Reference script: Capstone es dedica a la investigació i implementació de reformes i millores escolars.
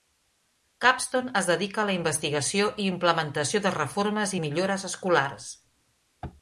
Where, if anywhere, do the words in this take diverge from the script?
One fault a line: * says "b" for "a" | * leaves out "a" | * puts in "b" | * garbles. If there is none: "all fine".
all fine